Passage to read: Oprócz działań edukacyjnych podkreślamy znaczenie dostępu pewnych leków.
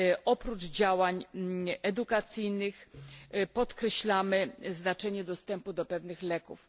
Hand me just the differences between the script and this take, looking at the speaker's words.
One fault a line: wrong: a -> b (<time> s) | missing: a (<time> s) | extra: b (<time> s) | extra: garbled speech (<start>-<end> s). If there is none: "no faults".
extra: do (5.7 s)